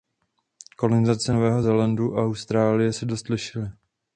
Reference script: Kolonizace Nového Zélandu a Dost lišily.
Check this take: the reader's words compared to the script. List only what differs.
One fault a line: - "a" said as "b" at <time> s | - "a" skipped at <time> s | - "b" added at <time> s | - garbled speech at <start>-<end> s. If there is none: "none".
- "Austrálie se" added at 2.2 s